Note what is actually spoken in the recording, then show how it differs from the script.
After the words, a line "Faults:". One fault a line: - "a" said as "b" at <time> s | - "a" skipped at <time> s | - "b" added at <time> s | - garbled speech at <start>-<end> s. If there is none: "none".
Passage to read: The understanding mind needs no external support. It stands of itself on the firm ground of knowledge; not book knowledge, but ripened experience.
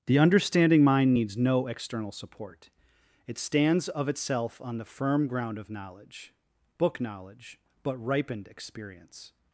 The understanding mind needs no external support. It stands of itself on the firm ground of knowledge; book knowledge, but ripened experience.
Faults:
- "not" skipped at 6.3 s